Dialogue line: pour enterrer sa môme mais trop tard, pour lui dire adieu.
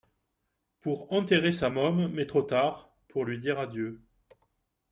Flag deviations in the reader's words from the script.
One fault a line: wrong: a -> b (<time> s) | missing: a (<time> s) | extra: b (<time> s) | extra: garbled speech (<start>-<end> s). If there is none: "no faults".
no faults